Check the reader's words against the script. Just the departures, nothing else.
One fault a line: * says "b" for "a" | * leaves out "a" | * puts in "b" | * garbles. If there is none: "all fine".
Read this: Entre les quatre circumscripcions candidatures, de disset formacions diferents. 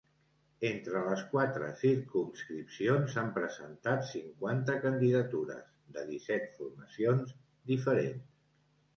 * puts in "s'han presentat cinquanta"